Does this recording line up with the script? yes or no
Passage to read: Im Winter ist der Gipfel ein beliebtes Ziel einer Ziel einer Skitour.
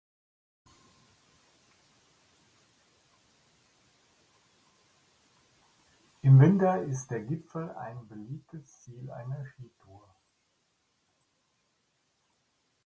no